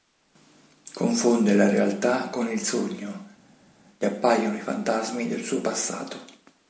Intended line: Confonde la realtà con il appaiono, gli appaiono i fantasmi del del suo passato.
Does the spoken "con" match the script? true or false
true